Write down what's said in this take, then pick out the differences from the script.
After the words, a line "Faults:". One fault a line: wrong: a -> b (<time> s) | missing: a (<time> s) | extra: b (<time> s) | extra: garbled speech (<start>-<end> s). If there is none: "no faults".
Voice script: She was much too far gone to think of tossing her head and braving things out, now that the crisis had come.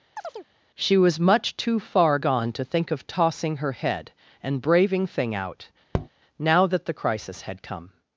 She was much too far gone to think of tossing her head and braving thing out, now that the crisis had come.
Faults:
wrong: things -> thing (5.1 s)